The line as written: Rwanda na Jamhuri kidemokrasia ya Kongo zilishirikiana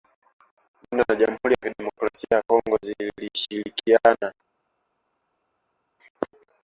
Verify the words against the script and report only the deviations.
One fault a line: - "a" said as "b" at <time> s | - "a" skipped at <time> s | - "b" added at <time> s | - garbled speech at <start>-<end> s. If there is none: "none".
- "ya" added at 1.5 s